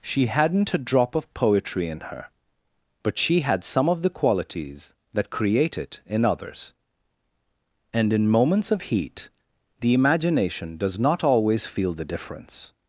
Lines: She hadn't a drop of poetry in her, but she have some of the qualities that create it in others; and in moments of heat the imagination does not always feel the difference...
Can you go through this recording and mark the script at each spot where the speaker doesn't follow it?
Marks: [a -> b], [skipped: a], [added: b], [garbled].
She hadn't a drop of poetry in her, but she [have -> had] some of the qualities that create it in others; and in moments of heat the imagination does not always feel the difference...